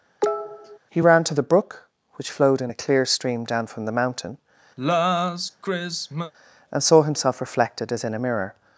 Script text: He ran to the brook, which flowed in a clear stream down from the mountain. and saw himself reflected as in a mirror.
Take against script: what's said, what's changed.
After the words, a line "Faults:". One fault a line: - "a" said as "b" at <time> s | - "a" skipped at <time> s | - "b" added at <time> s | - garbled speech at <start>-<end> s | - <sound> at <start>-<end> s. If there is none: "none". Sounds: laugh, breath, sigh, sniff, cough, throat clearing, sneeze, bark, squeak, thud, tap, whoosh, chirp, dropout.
He ran to the brook, which flowed in a clear stream down from the mountain. and saw himself reflected as in a mirror.
Faults:
- cough at 0.2-0.8 s
- sigh at 4.8-6.3 s